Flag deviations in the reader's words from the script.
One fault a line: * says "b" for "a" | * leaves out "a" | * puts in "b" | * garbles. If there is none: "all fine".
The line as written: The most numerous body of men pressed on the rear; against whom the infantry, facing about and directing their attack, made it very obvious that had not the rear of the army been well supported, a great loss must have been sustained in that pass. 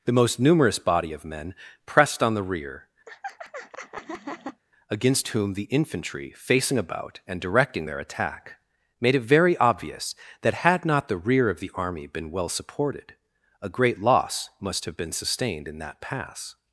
all fine